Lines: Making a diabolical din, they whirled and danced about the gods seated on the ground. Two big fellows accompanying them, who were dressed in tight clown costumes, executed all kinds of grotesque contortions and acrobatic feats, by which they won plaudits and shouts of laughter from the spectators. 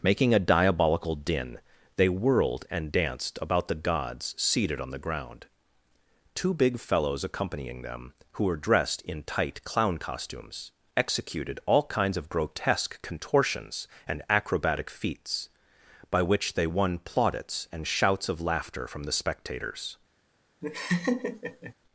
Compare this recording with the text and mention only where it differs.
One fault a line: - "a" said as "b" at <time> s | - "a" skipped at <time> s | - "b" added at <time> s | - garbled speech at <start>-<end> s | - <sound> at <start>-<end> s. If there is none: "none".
- laugh at 20.6-21.7 s